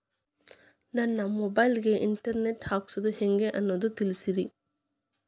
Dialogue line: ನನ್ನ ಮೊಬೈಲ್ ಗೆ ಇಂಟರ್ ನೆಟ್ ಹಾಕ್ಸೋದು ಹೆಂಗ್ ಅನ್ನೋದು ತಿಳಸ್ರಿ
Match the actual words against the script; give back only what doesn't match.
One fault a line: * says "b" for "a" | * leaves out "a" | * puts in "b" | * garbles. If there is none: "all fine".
all fine